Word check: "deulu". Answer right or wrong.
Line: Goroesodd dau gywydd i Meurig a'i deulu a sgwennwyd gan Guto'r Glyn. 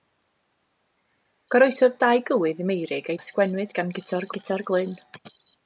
wrong